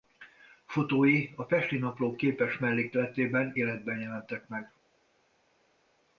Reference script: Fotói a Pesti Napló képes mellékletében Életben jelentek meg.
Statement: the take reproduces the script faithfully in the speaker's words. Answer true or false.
true